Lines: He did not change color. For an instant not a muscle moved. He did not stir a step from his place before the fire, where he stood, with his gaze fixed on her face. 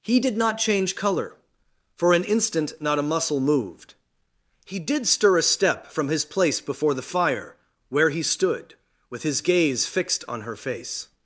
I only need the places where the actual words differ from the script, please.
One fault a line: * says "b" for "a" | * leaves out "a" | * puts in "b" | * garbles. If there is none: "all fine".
* leaves out "not"